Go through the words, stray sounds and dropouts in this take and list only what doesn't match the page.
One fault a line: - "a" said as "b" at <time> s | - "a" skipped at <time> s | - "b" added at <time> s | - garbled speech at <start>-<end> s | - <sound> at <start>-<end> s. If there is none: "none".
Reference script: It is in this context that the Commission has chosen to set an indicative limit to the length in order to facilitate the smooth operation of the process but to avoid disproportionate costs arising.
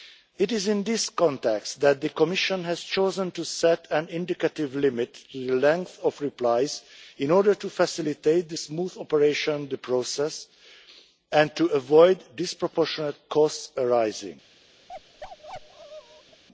- "of replies" added at 6.0 s
- "but" said as "and" at 11.3 s
- bark at 14.9-16.4 s